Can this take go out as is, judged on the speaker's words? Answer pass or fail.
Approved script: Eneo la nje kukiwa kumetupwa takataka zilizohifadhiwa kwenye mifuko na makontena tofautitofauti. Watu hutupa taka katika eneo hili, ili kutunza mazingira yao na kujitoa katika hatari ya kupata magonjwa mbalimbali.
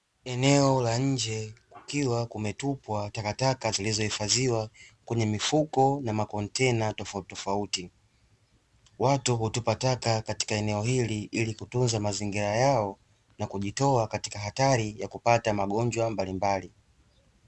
pass